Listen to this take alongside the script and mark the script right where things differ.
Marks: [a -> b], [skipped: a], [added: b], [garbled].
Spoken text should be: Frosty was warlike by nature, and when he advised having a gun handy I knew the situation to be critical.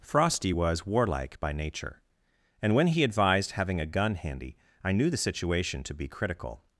Frosty was warlike by nature, and when he advised having a gun handy I knew the situation to be critical.